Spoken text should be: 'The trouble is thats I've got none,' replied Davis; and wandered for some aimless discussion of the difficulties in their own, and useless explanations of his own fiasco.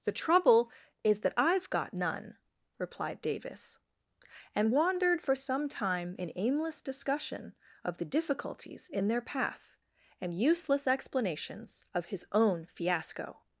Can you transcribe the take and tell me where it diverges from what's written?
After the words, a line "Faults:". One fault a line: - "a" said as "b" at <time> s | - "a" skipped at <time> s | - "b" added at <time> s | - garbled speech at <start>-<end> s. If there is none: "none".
'The trouble is that I've got none,' replied Davis; and wandered for some time in aimless discussion of the difficulties in their path, and useless explanations of his own fiasco.
Faults:
- "thats" said as "that" at 1.2 s
- "time in" added at 5.7 s
- "own" said as "path" at 9.2 s